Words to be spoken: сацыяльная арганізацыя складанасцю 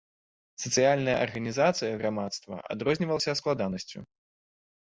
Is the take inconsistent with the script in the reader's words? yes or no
yes